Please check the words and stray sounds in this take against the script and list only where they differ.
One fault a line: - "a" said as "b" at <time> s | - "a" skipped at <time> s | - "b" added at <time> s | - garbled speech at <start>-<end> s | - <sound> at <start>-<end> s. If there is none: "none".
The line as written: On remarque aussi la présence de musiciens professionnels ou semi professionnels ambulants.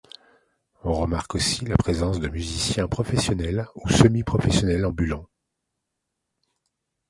none